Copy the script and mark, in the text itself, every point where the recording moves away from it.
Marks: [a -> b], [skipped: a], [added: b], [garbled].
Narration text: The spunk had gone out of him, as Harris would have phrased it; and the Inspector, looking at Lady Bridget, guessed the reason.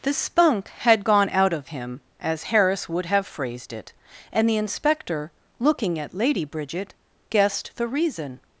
The spunk had gone out of him, as Harris would have phrased it; and the Inspector, looking at Lady Bridget, guessed the reason.